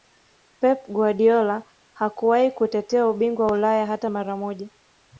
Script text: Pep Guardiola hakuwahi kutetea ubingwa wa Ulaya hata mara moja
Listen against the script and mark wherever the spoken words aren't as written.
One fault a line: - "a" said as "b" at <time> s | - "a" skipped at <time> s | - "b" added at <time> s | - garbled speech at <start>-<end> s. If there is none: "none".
none